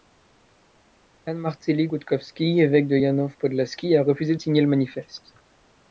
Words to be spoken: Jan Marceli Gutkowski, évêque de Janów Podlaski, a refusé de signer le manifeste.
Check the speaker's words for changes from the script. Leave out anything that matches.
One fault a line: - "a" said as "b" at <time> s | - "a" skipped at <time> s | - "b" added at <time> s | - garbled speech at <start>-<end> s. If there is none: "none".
none